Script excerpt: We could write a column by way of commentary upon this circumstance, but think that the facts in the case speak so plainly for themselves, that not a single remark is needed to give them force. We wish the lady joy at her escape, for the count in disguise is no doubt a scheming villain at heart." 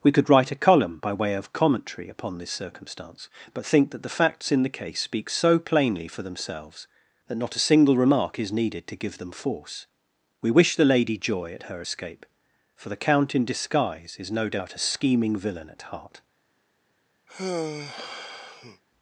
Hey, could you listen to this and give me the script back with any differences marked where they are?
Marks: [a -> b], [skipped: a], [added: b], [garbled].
We could write a column by way of commentary upon this circumstance, but think that the facts in the case speak so plainly for themselves, that not a single remark is needed to give them force. We wish the lady joy at her escape, for the count in disguise is no doubt a scheming villain at heart."